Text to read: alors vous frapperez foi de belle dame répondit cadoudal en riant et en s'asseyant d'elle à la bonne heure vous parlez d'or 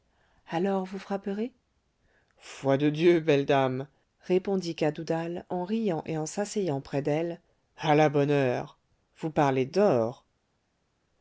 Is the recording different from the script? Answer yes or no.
yes